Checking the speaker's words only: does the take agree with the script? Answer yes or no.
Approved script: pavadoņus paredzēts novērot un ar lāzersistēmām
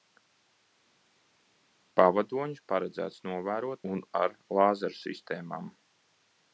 yes